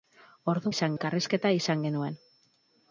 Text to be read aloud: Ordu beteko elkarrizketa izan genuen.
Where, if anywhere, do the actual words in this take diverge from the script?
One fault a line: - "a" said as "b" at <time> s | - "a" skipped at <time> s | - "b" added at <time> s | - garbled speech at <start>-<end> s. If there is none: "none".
- "beteko" said as "izan" at 0.7 s